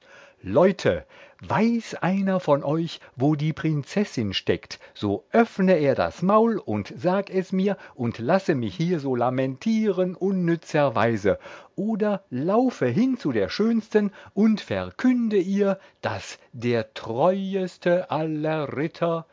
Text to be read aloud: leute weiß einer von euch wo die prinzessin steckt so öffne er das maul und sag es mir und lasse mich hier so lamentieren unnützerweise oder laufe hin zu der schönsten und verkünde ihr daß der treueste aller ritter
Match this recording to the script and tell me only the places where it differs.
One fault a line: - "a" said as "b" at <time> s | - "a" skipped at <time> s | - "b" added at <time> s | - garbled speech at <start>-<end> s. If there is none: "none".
none